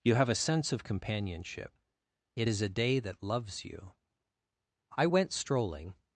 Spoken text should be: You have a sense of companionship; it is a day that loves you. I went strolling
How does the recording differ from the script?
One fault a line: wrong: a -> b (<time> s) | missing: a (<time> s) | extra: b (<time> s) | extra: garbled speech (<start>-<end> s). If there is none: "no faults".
no faults